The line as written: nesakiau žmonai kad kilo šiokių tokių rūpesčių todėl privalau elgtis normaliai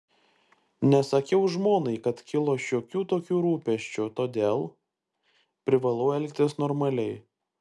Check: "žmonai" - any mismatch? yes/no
no